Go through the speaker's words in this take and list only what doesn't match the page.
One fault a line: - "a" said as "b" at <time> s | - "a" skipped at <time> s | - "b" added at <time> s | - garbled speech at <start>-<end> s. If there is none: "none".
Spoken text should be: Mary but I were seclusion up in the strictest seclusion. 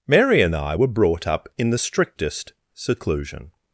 - "but" said as "and" at 0.4 s
- "seclusion" said as "brought" at 0.9 s